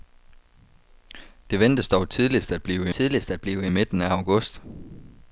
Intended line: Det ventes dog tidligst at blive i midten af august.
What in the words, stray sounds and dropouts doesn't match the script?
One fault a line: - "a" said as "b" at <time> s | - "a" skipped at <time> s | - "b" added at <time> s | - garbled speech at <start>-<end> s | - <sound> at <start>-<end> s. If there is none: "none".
- "tidligst at blive" added at 2.9 s